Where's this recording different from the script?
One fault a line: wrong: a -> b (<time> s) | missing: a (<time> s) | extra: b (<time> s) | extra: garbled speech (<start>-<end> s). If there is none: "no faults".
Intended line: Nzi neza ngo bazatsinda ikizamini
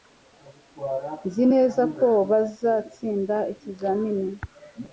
wrong: ngo -> ko (2.0 s)